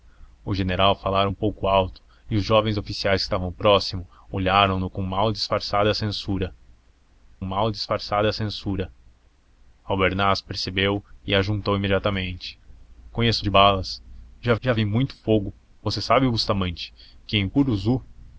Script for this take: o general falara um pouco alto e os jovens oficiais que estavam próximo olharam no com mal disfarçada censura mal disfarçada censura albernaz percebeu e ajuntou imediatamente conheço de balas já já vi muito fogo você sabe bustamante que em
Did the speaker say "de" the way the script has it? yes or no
yes